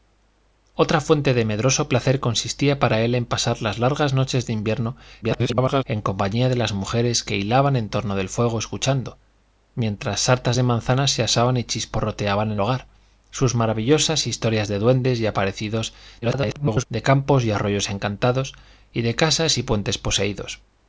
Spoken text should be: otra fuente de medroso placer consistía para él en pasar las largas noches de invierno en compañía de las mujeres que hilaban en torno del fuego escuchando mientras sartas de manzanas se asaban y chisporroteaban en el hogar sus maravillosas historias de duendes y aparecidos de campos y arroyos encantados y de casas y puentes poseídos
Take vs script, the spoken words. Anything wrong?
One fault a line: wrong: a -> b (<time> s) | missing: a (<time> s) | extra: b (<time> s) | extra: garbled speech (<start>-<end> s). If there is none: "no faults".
extra: garbled speech (5.2-5.8 s)
missing: el (12.6 s)
extra: garbled speech (16.2-16.9 s)